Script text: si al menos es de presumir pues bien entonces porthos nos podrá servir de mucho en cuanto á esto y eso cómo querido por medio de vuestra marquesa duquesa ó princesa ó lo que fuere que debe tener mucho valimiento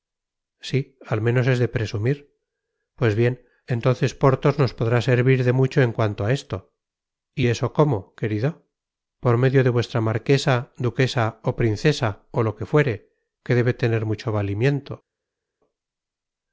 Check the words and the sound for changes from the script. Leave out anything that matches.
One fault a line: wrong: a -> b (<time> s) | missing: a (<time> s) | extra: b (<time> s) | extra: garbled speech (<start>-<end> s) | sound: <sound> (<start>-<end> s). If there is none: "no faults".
no faults